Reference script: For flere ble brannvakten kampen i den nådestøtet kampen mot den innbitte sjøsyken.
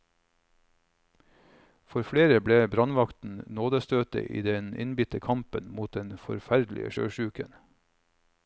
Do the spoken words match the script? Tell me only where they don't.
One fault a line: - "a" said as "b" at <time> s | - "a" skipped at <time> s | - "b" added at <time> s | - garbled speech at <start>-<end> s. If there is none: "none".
- "kampen" said as "nådestøtet" at 3.6 s
- "nådestøtet" said as "innbitte" at 4.8 s
- "innbitte" said as "forferdelige" at 6.2 s